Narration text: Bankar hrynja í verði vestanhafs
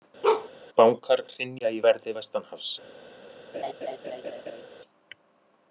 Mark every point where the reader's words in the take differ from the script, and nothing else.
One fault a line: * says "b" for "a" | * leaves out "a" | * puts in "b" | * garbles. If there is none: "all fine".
all fine